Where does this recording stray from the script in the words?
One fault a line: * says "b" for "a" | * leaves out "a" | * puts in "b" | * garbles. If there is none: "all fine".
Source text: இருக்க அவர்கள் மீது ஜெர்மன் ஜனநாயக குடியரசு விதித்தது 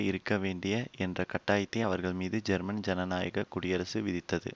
* puts in "வேண்டிய என்ற கட்டாயத்தை"